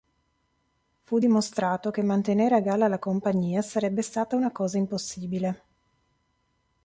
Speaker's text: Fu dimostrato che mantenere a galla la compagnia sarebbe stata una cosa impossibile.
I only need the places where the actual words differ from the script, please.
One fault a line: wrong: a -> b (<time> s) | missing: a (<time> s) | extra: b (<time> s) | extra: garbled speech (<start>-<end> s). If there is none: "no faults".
no faults